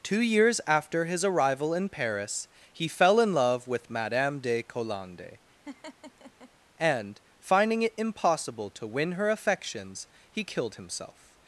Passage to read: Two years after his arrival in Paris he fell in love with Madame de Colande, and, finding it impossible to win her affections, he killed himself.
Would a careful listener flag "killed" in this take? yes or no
no